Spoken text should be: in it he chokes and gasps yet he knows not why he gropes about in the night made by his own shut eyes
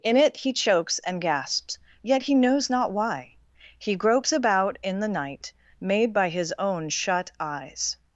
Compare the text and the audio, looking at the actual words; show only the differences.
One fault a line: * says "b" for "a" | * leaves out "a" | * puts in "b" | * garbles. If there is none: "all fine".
all fine